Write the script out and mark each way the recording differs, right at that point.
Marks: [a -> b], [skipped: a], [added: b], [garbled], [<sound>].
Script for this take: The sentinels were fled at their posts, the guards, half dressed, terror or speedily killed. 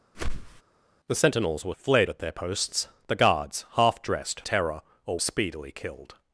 [whoosh] The sentinels were fled at their posts, the guards, half dressed, terror or speedily killed.